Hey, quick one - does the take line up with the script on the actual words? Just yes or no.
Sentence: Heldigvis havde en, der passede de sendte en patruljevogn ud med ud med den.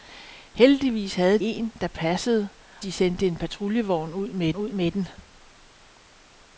yes